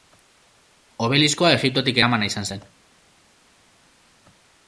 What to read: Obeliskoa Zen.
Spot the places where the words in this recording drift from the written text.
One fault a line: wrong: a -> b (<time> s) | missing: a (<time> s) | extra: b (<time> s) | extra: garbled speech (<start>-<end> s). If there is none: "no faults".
extra: Egiptotik eramana izan (1.6 s)